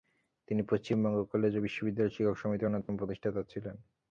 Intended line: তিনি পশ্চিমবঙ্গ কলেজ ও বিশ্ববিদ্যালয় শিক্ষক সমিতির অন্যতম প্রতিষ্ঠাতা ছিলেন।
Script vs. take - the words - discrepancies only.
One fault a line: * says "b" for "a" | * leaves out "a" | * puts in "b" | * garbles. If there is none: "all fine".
all fine